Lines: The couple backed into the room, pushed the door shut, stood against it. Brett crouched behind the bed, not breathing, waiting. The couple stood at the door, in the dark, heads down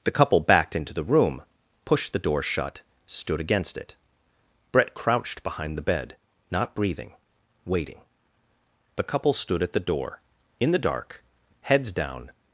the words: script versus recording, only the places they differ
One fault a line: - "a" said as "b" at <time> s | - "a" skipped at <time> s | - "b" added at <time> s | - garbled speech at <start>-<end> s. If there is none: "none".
none